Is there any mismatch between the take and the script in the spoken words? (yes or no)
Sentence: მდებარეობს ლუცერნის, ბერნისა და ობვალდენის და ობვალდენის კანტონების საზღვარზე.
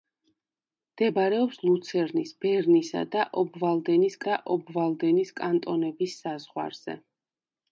no